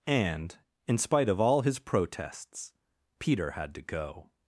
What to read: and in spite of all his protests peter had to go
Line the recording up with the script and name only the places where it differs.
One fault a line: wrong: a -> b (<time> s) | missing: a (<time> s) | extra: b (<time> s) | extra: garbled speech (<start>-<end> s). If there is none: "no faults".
no faults